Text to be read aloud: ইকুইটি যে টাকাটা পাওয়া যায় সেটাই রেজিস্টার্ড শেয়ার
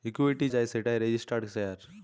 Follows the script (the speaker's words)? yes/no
no